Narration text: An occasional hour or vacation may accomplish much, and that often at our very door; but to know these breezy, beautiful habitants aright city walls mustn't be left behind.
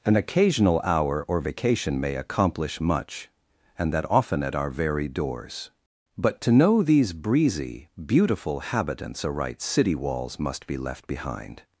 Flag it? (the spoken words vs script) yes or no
yes